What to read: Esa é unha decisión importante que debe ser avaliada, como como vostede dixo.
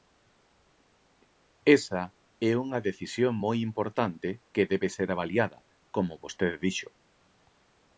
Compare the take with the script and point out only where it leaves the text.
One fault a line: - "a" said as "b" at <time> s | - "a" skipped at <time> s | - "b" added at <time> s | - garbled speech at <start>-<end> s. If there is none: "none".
- "moi" added at 3.4 s
- "como" skipped at 6.2 s